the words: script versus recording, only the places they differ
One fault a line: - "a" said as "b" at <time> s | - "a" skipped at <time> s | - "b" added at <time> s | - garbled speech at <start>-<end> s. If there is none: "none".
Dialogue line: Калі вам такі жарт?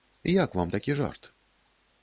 - "Калі" said as "Як" at 0.2 s